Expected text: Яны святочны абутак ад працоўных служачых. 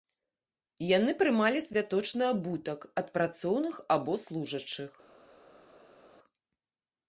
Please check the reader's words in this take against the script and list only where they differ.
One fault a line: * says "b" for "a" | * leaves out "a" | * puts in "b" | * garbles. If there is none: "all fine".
* puts in "прымалі"
* puts in "або"